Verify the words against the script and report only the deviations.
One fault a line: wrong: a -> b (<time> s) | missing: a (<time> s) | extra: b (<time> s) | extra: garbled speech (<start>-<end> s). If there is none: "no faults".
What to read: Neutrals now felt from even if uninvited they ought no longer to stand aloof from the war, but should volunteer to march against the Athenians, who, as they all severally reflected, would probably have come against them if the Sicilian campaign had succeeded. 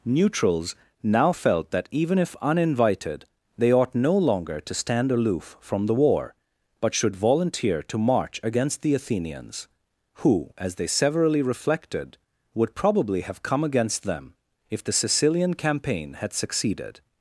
wrong: from -> that (1.7 s)
missing: all (10.9 s)